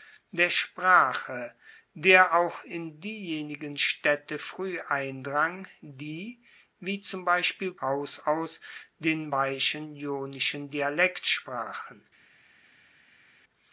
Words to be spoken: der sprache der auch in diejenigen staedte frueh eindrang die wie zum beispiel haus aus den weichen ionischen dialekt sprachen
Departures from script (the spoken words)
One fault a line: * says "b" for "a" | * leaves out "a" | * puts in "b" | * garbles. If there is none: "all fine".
all fine